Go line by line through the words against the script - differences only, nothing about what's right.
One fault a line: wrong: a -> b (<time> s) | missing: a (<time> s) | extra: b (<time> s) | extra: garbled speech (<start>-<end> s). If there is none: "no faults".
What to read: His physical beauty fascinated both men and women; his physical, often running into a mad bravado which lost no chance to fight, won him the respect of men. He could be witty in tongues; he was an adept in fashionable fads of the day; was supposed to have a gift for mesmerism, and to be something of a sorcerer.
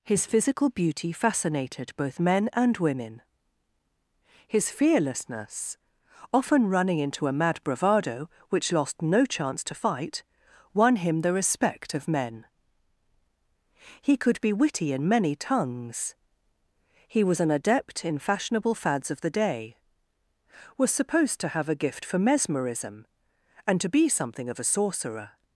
wrong: physical -> fearlessness (4.7 s)
extra: many (15.1 s)